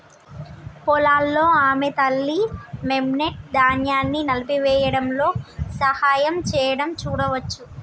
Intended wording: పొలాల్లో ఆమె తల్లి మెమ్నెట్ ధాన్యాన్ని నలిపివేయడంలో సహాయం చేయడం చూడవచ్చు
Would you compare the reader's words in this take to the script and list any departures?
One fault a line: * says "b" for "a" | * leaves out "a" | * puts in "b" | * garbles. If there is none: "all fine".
all fine